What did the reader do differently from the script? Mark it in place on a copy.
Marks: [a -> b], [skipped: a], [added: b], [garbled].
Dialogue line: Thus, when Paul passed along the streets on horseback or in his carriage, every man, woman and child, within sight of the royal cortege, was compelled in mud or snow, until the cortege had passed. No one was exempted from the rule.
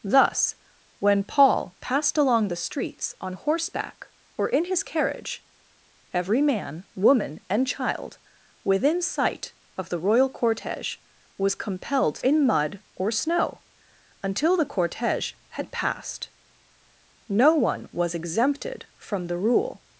Thus, when Paul passed along the streets on horseback or in his carriage, every man, woman and child, within sight of the royal cortege, was compelled in mud or snow, until the cortege had passed. No one was exempted from the rule.